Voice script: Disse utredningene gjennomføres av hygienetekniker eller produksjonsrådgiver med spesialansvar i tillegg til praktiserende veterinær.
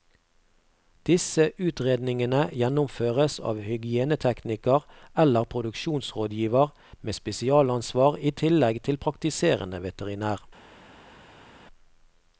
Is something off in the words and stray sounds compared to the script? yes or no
no